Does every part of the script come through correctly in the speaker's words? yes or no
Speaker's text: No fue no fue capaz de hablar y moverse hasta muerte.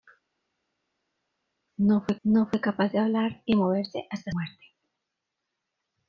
yes